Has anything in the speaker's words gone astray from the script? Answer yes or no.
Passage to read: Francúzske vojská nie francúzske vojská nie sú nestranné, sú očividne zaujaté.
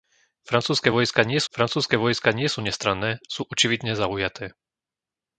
no